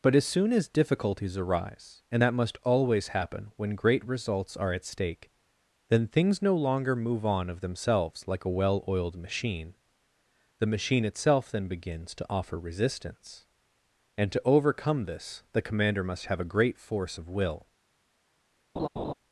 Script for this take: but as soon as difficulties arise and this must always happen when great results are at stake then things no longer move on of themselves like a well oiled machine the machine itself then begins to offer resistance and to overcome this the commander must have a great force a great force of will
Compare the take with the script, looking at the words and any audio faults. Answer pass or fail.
fail